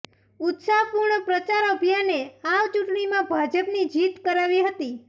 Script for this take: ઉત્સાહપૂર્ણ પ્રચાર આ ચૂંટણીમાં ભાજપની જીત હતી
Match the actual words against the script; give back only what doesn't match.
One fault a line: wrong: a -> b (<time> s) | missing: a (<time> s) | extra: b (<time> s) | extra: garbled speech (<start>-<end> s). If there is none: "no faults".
extra: અભિયાને (1.7 s)
extra: કરાવી (4.2 s)